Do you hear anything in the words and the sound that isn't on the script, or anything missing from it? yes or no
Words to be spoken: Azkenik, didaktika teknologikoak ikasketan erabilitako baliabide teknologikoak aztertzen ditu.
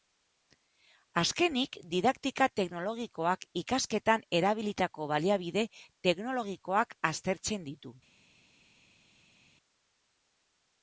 no